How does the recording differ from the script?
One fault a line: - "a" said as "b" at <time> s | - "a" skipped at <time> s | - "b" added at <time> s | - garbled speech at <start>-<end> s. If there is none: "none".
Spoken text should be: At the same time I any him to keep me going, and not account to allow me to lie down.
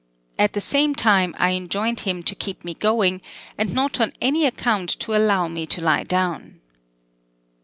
- "any" said as "enjoined" at 1.5 s
- "on any" added at 4.0 s